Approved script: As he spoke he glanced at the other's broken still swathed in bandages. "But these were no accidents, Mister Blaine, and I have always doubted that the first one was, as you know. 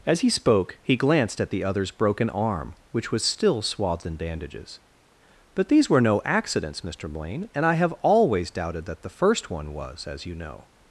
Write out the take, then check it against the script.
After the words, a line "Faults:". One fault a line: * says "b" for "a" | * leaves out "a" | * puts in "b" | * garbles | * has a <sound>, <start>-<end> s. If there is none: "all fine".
As he spoke he glanced at the other's broken arm, which was still swathed in bandages. "But these were no accidents, Mister Blaine, and I have always doubted that the first one was, as you know.
Faults:
* puts in "arm which was"